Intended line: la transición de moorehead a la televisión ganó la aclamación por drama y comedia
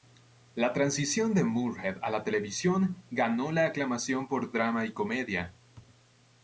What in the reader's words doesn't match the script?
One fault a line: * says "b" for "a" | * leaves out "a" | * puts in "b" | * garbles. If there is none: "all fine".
all fine